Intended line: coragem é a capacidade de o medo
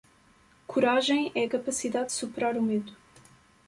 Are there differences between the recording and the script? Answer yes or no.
yes